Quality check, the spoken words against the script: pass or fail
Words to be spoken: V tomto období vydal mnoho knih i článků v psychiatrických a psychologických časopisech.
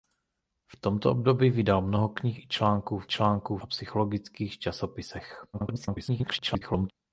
fail